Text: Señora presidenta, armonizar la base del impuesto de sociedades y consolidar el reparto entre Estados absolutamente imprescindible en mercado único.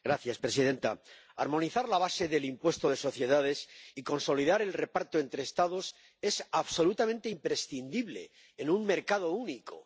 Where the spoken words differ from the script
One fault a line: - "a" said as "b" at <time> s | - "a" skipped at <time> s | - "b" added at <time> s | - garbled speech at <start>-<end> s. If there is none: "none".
- "es" added at 6.2 s
- "un" added at 8.7 s